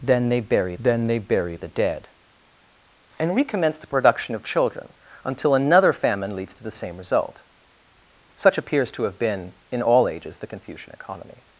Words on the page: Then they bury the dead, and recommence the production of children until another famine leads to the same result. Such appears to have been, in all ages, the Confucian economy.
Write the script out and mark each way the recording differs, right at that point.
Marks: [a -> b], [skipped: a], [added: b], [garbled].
Then they bury [added: then they bury] the dead, and recommence the production of children until another famine leads to the same result. Such appears to have been, in all ages, the Confucian economy.